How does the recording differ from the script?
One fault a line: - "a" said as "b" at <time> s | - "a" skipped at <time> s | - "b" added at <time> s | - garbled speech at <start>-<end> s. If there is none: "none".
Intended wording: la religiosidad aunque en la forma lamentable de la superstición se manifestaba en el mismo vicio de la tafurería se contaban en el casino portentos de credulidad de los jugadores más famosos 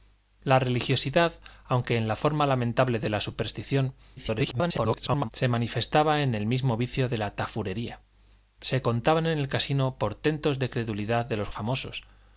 - garbled speech at 4.2-5.3 s
- "jugadores más" skipped at 11.5 s